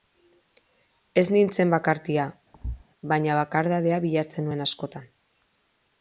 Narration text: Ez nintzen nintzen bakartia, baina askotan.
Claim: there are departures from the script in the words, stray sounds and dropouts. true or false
true